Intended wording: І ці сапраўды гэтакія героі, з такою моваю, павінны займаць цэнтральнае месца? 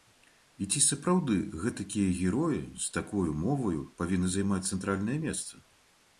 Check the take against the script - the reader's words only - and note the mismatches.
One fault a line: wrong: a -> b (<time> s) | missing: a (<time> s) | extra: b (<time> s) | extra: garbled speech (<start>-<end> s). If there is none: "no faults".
no faults